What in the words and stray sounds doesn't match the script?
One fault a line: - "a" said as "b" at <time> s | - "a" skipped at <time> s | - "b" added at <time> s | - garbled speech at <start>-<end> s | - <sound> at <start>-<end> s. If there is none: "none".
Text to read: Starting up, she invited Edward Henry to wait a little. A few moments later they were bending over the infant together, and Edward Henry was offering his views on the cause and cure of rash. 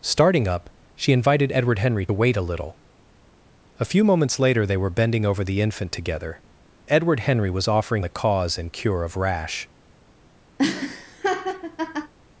- "to" skipped at 2.1 s
- "and" skipped at 6.4 s
- "his views on" skipped at 8.0 s
- laugh at 10.6-12.1 s